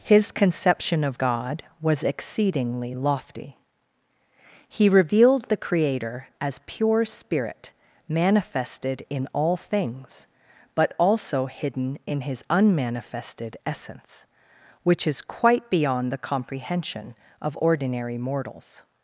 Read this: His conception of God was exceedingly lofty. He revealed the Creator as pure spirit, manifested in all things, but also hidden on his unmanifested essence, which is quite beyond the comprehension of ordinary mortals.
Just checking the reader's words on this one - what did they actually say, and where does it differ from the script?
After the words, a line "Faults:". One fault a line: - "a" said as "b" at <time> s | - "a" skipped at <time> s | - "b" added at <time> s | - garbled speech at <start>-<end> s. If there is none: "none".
His conception of God was exceedingly lofty. He revealed the Creator as pure spirit, manifested in all things, but also hidden in his unmanifested essence, which is quite beyond the comprehension of ordinary mortals.
Faults:
- "on" said as "in" at 12.0 s